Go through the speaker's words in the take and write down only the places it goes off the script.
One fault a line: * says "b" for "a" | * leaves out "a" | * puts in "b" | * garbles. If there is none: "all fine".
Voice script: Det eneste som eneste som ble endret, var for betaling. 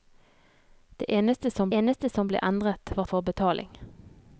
all fine